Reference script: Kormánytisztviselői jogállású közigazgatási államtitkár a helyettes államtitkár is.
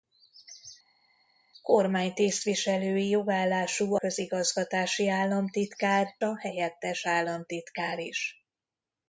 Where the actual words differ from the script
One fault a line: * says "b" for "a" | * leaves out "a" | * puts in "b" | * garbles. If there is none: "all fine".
all fine